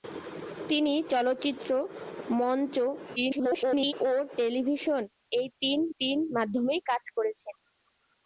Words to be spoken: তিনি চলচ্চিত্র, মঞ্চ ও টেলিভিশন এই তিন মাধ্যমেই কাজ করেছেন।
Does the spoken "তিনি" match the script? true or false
true